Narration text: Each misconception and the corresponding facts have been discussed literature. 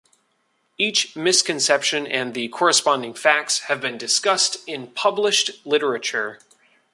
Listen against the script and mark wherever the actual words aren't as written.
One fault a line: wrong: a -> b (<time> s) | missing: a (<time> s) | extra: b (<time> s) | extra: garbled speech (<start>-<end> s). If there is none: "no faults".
extra: in published (4.7 s)